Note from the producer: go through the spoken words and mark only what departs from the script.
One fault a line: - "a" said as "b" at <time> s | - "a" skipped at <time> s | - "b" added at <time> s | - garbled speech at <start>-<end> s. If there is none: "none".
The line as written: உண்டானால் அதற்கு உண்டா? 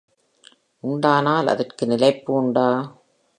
- "நிலைப்பு" added at 1.9 s